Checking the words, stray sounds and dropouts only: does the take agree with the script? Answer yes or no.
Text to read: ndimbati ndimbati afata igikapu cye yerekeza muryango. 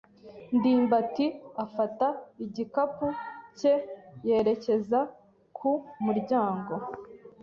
no